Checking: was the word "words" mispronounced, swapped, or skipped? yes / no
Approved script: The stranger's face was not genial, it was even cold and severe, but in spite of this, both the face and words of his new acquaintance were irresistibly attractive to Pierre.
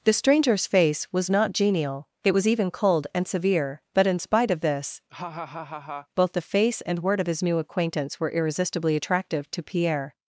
yes